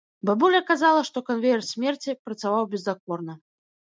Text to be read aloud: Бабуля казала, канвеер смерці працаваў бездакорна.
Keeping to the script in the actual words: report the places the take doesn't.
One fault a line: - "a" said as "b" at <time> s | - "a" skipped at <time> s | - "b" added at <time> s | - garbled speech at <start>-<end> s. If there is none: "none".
- "што" added at 1.1 s